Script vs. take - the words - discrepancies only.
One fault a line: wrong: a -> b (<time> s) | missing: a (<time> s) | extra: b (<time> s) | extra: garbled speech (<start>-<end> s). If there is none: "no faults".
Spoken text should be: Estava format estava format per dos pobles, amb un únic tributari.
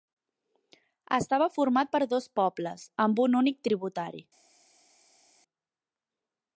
missing: estava format (1.9 s)